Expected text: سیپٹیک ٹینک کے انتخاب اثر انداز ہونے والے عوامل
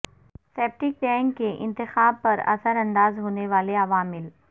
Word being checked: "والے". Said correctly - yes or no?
yes